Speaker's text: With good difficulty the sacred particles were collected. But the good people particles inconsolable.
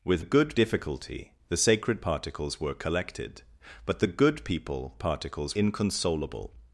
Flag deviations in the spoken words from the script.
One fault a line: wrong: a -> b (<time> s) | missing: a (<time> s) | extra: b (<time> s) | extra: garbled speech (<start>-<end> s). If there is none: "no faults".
no faults